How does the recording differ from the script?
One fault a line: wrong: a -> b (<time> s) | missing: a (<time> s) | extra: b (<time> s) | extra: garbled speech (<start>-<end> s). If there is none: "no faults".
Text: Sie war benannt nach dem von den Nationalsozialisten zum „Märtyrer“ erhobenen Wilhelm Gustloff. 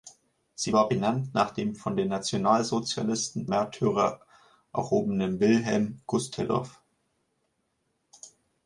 missing: zum (3.5 s)